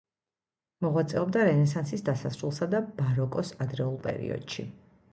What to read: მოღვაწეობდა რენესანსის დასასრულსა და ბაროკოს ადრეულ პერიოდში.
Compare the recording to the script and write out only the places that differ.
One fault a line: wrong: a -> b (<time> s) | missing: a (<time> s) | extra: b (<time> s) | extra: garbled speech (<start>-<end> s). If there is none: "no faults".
no faults